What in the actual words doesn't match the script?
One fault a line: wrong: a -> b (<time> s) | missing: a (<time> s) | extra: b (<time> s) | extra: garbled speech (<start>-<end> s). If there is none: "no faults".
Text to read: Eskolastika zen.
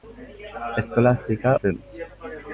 no faults